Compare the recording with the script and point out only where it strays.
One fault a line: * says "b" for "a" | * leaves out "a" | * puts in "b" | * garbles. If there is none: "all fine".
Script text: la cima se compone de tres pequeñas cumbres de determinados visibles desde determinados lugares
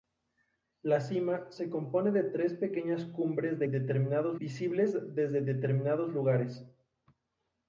all fine